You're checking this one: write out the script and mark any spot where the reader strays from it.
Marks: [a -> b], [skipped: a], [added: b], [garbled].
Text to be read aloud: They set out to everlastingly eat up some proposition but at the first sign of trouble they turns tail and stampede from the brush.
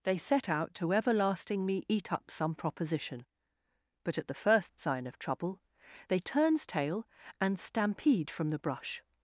They set out to everlastingly eat up some proposition but at the first sign of trouble they turns tail and stampede from the brush.